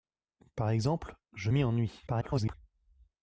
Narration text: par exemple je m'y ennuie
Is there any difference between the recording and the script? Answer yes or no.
yes